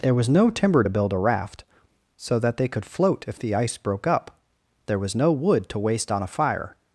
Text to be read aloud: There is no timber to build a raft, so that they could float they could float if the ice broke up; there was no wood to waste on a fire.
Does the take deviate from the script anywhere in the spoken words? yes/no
yes